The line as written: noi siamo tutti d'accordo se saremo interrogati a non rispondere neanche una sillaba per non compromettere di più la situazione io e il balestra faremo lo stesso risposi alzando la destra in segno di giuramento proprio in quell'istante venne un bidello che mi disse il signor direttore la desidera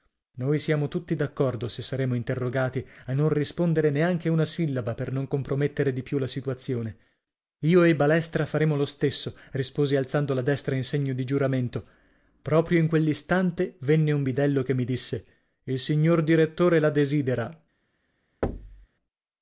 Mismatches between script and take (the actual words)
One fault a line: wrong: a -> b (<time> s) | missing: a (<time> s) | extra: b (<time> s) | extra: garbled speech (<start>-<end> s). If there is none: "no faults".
no faults